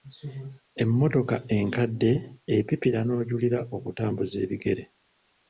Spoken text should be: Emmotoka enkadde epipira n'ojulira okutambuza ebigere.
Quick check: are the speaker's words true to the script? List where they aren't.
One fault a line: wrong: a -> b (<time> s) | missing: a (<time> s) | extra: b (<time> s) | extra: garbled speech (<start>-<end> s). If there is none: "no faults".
no faults